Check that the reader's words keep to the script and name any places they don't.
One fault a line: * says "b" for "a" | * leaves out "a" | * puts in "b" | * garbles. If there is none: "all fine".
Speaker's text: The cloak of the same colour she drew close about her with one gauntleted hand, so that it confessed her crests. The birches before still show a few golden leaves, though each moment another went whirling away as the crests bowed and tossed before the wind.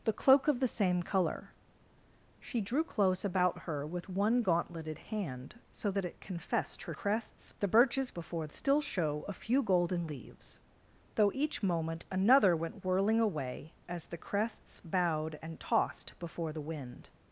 all fine